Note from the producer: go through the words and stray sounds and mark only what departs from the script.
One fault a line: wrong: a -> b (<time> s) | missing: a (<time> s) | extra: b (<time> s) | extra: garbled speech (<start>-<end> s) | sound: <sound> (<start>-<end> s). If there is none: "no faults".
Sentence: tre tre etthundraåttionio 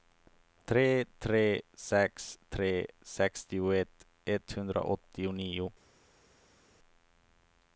extra: sex tre sextioett (1.8 s)